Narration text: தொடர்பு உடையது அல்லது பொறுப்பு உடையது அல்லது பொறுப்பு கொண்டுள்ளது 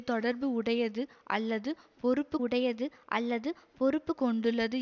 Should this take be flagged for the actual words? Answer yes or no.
no